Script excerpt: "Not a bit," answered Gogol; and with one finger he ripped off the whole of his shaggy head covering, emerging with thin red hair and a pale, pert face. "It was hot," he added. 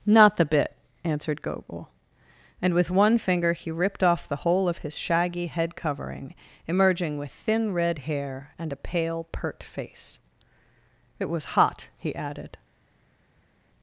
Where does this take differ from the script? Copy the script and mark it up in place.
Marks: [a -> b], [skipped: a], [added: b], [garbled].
"Not [a -> the] bit," answered Gogol; and with one finger he ripped off the whole of his shaggy head covering, emerging with thin red hair and a pale, pert face. "It was hot," he added.